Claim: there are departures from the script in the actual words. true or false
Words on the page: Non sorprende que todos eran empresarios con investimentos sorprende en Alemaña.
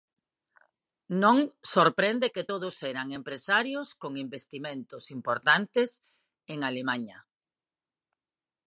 true